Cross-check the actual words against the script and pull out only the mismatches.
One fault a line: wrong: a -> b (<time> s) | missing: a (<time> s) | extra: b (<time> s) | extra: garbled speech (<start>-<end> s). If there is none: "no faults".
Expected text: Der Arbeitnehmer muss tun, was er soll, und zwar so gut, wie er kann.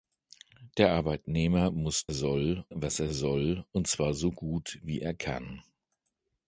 wrong: tun -> soll (2.1 s)